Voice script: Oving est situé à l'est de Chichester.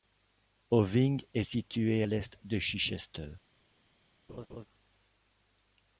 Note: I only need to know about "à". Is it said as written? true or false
false